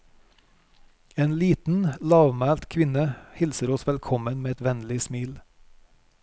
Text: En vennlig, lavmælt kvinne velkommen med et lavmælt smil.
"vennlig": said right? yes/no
no